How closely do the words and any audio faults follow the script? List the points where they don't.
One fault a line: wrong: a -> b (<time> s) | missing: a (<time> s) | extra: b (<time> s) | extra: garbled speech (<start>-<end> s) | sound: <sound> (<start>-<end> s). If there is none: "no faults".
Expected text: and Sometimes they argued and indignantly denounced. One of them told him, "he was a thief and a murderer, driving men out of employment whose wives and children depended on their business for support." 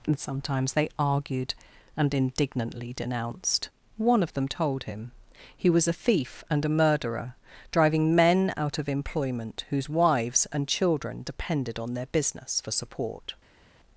no faults